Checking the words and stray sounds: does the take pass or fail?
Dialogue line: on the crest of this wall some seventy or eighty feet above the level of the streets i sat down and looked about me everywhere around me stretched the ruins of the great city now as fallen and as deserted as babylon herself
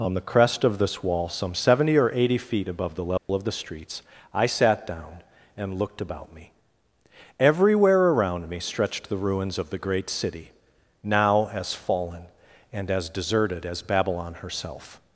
fail